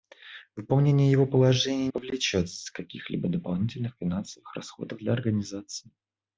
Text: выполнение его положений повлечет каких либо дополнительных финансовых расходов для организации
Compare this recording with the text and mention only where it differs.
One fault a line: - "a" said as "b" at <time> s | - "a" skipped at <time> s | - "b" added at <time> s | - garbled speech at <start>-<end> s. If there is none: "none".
none